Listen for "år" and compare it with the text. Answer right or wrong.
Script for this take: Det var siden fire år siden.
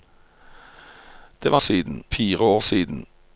right